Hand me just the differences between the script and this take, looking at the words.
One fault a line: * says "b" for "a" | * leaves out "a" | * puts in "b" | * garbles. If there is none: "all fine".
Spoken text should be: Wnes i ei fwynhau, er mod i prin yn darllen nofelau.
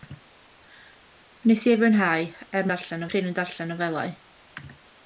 * says "darllen" for "mod"